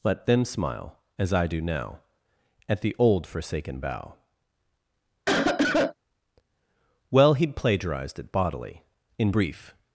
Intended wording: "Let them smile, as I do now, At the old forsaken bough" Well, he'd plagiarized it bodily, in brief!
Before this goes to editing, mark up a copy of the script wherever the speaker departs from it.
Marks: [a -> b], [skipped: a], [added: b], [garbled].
"Let them smile, as I do now, At the old forsaken bough" Well, he'd plagiarized it bodily, in brief!